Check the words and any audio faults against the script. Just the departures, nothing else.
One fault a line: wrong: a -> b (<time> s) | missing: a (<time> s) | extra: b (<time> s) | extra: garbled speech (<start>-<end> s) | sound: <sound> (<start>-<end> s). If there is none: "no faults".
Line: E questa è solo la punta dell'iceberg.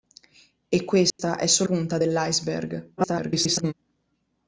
sound: dropout (1.1-1.2 s)
missing: la (1.7 s)
extra: garbled speech (3.0-3.7 s)